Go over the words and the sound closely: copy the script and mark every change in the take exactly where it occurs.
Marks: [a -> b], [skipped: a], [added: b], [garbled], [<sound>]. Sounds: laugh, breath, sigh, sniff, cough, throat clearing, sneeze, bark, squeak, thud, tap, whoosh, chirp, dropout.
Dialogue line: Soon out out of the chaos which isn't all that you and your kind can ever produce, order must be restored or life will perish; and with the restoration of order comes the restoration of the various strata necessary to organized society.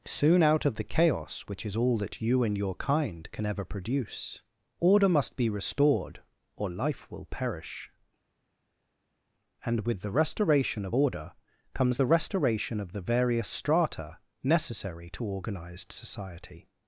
Soon out [skipped: out] of the chaos which [isn't -> is] all that you and your kind can ever produce, order must be restored or life will perish; and with the restoration of order comes the restoration of the various strata necessary to organized society.